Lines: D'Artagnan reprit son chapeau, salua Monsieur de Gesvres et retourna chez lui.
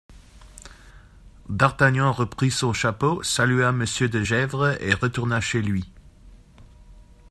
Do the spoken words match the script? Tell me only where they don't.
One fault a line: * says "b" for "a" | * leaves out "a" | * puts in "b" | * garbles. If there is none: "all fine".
all fine